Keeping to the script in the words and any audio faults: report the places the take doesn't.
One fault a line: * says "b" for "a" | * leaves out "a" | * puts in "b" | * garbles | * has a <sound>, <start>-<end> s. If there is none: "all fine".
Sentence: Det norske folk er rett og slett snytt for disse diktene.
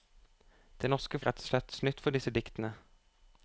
* leaves out "folk"